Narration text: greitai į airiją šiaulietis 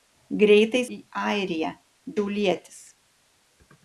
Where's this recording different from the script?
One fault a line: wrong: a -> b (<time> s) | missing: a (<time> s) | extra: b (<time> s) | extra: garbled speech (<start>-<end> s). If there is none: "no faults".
no faults